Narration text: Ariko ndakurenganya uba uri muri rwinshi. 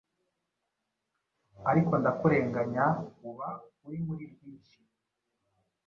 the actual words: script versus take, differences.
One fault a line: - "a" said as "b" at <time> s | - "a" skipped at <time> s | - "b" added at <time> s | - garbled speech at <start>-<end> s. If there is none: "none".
none